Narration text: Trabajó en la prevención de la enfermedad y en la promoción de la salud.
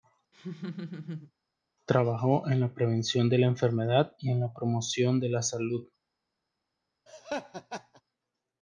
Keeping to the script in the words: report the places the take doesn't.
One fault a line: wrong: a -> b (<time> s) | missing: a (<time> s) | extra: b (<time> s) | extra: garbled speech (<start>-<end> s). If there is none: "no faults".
no faults